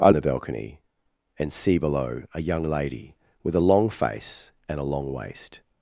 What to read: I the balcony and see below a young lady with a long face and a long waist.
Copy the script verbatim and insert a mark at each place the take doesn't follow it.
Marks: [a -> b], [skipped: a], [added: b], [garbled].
I the balcony and see below a young lady with a long face and a long waist.